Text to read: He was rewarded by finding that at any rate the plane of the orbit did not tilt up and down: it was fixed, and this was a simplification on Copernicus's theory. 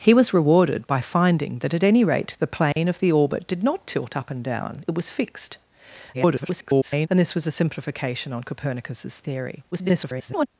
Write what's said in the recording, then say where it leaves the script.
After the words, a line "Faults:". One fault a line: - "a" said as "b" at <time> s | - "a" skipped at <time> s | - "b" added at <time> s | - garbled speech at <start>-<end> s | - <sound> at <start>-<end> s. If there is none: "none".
He was rewarded by finding that at any rate the plane of the orbit did not tilt up and down: it was fixed, [garbled] and this was a simplification on Copernicus's theory. [garbled]
Faults:
- dropout at 2.7-2.8 s
- garbled speech at 6.1-7.1 s
- garbled speech at 9.7-10.5 s